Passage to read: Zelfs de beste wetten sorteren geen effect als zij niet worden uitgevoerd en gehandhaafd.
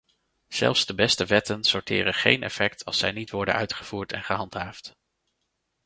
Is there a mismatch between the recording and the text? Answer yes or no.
no